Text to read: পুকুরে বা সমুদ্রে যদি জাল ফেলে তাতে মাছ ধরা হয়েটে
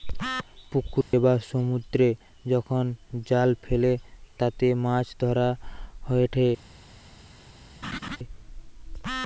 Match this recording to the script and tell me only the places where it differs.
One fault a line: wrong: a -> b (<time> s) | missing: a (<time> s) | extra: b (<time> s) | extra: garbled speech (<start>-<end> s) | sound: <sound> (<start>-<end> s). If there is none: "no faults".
sound: dropout (1.0-1.1 s)
wrong: যদি -> যখন (2.5 s)
sound: laugh (7.8-8.2 s)